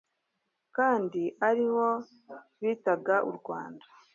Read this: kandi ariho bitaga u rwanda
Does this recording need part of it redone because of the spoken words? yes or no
no